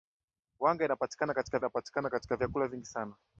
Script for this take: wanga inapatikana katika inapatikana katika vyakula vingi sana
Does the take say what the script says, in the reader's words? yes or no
yes